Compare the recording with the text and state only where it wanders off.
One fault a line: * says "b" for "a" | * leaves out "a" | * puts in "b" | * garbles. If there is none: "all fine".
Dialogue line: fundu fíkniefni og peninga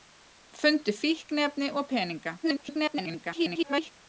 * garbles